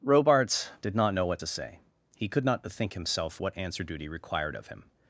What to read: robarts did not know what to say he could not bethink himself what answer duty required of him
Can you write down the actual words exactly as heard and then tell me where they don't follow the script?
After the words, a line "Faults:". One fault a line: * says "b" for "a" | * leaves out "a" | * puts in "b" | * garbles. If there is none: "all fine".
robarts did not know what to say he could not bethink himself what answer duty required of him
Faults:
all fine